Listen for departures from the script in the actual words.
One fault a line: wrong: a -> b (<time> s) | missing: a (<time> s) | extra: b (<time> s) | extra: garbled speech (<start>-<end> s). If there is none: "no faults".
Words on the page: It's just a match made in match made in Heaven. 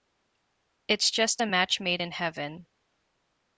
missing: match made in (2.1 s)